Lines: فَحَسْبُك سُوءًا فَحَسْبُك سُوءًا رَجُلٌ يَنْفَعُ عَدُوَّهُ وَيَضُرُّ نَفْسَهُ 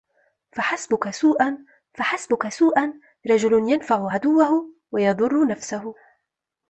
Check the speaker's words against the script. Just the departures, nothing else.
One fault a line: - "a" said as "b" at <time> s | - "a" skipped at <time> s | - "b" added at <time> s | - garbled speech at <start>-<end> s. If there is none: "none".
none